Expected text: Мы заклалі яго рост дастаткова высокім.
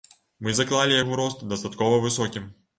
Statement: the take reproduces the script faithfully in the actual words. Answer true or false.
true